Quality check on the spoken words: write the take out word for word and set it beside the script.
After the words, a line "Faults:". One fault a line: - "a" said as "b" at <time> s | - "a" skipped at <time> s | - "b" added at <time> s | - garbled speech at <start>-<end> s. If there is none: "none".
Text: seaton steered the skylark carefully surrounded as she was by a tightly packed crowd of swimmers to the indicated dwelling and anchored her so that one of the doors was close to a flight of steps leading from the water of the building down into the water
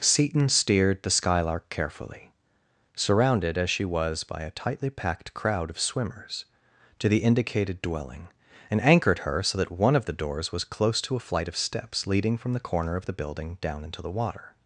seaton steered the skylark carefully surrounded as she was by a tightly packed crowd of swimmers to the indicated dwelling and anchored her so that one of the doors was close to a flight of steps leading from the corner of the building down into the water
Faults:
- "water" said as "corner" at 12.6 s